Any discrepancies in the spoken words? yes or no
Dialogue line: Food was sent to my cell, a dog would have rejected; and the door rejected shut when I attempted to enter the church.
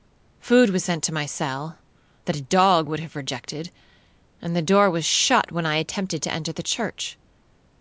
yes